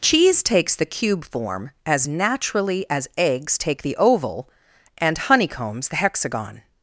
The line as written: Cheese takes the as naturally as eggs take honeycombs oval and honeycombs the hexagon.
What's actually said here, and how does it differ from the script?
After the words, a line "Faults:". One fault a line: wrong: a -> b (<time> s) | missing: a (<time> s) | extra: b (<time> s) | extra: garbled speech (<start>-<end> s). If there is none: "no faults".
Cheese takes the cube form as naturally as eggs take the oval and honeycombs the hexagon.
Faults:
extra: cube form (0.8 s)
wrong: honeycombs -> the (3.8 s)